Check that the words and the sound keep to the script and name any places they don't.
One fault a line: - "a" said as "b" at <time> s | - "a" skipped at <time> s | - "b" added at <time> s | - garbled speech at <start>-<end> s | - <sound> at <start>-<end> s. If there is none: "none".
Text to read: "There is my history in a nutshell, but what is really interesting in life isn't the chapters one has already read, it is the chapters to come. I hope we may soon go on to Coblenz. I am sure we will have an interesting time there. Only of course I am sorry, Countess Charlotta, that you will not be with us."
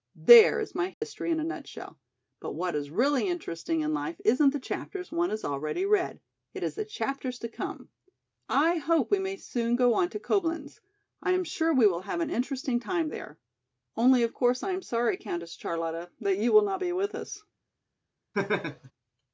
- dropout at 0.9-1.0 s
- laugh at 18.3-18.9 s